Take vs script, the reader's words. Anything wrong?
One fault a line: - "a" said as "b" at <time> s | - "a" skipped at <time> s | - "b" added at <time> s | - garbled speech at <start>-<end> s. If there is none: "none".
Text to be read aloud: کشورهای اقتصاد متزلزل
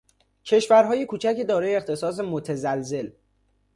- "کوچک دارای" added at 1.0 s